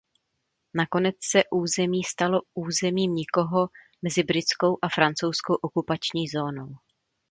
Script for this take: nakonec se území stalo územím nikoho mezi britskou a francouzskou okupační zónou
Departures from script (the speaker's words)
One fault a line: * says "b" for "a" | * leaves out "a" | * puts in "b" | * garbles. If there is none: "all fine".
all fine